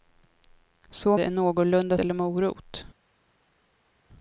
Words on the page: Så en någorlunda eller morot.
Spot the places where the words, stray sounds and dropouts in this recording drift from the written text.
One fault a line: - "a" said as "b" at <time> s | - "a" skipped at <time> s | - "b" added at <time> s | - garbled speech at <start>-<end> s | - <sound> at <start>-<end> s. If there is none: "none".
none